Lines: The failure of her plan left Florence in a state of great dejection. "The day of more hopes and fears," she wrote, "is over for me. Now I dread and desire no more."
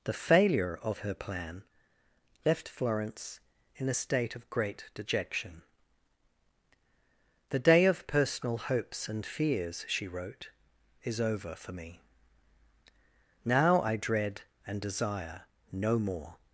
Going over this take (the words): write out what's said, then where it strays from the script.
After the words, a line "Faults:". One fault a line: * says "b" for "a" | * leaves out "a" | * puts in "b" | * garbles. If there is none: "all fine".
The failure of her plan left Florence in a state of great dejection. "The day of personal hopes and fears," she wrote, "is over for me. Now I dread and desire no more."
Faults:
* says "personal" for "more"